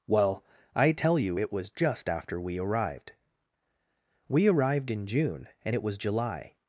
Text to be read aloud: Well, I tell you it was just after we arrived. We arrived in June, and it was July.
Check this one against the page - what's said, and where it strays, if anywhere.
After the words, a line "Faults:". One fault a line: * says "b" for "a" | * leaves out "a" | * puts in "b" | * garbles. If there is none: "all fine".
Well, I tell you it was just after we arrived. We arrived in June, and it was July.
Faults:
all fine